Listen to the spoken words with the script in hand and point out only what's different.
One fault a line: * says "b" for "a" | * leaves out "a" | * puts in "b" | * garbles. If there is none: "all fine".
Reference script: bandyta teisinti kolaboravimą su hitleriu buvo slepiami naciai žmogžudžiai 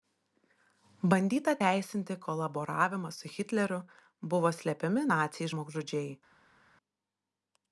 all fine